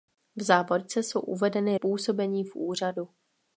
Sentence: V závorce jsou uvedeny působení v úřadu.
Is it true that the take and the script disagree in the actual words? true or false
false